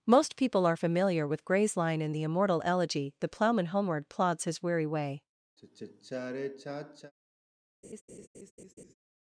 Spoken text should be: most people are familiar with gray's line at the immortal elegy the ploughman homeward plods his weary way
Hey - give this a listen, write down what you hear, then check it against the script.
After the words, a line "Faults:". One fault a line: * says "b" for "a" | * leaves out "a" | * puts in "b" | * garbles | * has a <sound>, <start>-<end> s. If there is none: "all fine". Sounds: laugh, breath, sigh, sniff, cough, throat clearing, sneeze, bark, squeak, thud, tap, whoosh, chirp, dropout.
most people are familiar with gray's line in the immortal elegy the ploughman homeward plods his weary way
Faults:
* says "in" for "at"
* has a sigh, 5.6-7.1 s
* has a laugh, 7.8-8.9 s